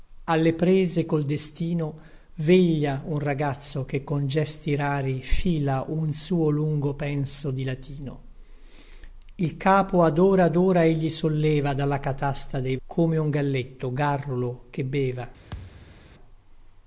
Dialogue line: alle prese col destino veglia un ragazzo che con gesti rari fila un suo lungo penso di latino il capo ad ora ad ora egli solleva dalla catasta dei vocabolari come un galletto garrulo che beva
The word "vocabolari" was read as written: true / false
false